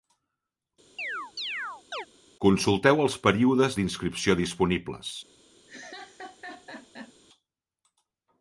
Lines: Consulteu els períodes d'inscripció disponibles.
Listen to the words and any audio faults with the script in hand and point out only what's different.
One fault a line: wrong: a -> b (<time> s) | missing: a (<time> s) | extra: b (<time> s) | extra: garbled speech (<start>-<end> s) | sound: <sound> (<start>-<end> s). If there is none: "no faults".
sound: chirp (1.0-2.1 s)
sound: laugh (5.7-7.1 s)